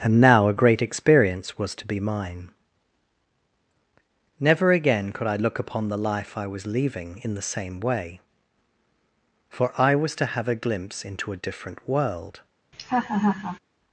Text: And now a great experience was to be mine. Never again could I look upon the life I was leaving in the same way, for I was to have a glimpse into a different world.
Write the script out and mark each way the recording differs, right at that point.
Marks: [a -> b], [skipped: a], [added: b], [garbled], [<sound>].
And now a great experience was to be mine. Never again could I look upon the life I was leaving in the same way, for I was to have a glimpse into a different world. [laugh]